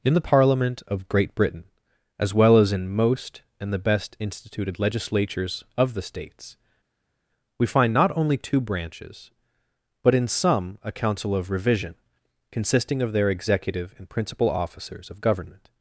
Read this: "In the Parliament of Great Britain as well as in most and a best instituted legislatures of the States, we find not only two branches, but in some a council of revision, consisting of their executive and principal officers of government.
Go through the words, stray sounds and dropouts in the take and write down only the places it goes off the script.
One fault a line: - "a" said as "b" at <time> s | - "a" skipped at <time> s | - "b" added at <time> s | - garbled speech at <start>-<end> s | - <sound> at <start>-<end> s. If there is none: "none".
- "a" said as "the" at 3.7 s